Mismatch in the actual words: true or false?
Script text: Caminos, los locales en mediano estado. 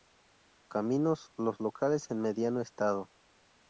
false